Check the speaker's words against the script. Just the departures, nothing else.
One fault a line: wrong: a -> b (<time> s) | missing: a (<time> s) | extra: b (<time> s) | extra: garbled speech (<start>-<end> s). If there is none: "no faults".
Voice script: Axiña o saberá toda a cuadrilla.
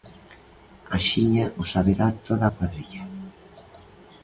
no faults